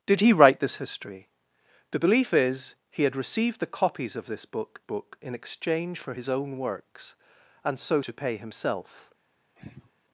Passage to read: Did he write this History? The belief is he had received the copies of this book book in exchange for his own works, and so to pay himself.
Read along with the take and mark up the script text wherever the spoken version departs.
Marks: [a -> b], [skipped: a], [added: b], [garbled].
Did he write this History? The belief is he had received the copies of this book book in exchange for his own works, and so to pay himself.